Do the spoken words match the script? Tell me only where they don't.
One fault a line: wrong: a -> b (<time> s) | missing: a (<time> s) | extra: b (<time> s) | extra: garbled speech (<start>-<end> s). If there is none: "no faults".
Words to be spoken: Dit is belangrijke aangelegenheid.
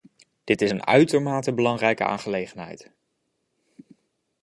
extra: een uitermate (0.7 s)